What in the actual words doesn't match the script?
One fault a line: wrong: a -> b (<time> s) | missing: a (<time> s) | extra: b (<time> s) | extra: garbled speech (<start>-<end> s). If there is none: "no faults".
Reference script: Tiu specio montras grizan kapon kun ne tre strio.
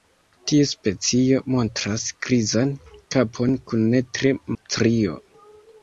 no faults